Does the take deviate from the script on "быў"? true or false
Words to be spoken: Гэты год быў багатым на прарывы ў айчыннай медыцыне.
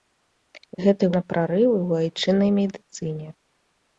true